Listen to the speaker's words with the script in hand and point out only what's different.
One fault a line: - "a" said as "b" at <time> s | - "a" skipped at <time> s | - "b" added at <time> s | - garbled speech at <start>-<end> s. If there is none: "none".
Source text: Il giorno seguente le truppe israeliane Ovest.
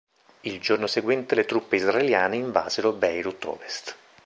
- "invasero Beirut" added at 2.4 s